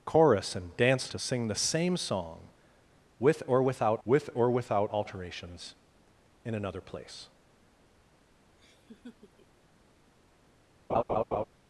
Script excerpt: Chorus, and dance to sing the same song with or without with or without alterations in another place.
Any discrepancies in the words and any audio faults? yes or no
yes